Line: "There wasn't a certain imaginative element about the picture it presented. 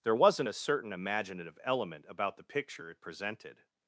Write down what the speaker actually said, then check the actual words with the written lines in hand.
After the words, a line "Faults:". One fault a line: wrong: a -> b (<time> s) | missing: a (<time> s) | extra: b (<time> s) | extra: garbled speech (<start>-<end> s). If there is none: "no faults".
"There wasn't a certain imaginative element about the picture it presented.
Faults:
no faults